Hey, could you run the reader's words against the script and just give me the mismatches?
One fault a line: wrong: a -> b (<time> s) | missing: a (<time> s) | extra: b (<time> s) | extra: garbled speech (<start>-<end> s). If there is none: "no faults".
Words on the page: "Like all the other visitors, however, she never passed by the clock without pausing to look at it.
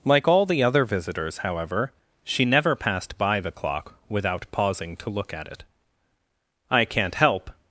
extra: I can't help (6.7 s)